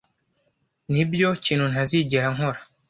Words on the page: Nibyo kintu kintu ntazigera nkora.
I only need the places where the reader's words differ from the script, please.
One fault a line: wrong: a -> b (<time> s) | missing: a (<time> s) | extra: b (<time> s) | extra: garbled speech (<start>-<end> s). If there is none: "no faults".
missing: kintu (1.6 s)